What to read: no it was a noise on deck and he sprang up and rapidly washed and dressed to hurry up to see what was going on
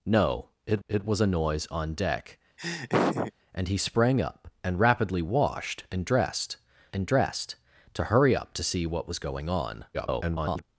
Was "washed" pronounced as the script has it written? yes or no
yes